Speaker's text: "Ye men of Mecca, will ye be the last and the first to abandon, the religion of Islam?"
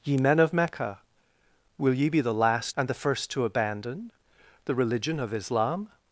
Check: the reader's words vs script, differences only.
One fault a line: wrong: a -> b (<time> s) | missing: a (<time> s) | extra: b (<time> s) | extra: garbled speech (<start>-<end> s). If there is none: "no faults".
no faults